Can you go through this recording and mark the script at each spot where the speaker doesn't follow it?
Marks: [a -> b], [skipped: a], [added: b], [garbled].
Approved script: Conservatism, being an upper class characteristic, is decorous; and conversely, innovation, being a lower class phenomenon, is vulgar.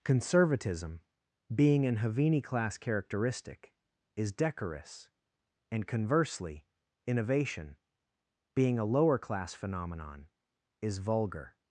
Conservatism, being an [upper -> havini] class characteristic, is decorous; and conversely, innovation, being a lower class phenomenon, is vulgar.